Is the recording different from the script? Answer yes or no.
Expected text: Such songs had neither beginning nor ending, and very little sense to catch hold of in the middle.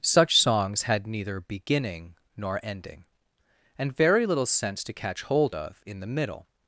no